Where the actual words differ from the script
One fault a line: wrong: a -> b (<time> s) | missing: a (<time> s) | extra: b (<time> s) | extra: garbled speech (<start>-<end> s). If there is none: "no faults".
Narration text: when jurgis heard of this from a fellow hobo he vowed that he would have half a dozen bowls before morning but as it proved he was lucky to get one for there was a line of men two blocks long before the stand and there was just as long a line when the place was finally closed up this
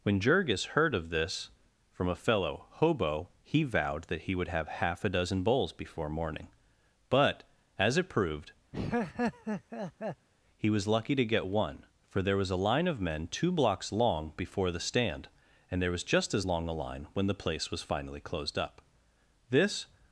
no faults